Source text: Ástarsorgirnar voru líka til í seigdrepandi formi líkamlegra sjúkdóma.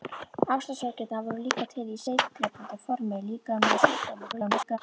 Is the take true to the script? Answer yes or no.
no